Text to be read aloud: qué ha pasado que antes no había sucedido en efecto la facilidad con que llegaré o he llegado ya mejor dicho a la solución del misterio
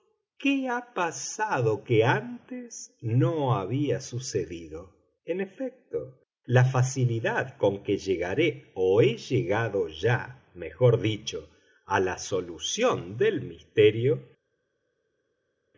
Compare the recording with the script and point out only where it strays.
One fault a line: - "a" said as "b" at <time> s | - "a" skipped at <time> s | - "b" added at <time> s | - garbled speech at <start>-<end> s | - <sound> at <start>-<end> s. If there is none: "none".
none